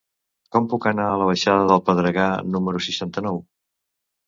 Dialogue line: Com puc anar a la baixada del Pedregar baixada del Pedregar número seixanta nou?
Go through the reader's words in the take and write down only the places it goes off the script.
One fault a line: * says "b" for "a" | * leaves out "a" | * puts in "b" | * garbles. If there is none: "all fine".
* leaves out "baixada del Pedregar"